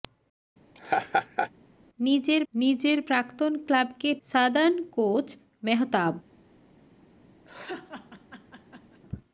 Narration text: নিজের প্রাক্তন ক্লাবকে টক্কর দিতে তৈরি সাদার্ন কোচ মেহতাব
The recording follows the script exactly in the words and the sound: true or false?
false